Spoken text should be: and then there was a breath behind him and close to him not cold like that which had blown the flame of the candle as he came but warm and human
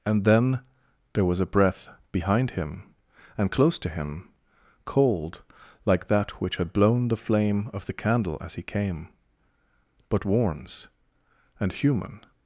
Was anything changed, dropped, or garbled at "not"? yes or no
yes